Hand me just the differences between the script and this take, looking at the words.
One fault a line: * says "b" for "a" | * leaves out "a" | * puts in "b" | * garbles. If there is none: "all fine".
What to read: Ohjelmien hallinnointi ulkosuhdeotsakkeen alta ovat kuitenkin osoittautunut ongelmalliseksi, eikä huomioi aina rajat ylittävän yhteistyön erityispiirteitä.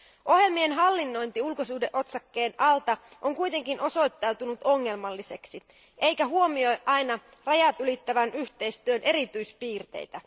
* says "on" for "ovat"